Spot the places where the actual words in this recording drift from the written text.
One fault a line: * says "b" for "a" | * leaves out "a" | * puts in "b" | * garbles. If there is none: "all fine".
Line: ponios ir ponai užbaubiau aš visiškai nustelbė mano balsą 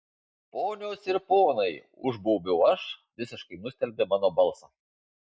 all fine